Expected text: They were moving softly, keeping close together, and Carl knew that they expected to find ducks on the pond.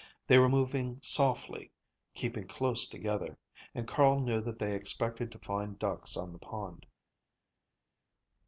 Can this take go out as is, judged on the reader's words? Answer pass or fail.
pass